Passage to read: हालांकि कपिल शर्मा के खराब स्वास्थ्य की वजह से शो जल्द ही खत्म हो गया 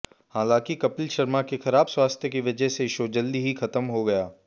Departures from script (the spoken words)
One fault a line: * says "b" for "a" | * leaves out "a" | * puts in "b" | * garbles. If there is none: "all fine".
all fine